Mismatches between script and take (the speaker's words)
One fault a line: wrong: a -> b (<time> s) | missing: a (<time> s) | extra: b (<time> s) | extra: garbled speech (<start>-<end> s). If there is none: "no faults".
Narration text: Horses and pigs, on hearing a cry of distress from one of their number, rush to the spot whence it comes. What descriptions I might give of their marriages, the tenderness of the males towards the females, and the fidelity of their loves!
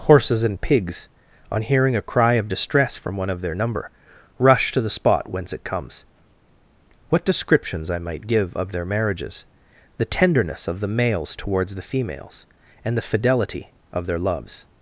no faults